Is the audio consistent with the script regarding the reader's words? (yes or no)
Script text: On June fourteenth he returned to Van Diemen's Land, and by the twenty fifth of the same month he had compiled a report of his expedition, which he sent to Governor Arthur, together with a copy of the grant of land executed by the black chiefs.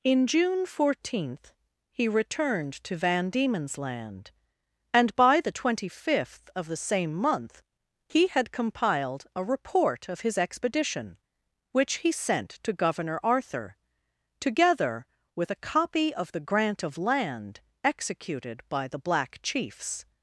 no